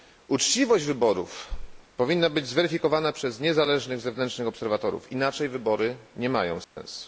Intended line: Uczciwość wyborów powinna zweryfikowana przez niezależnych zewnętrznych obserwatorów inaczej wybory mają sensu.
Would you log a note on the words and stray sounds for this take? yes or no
yes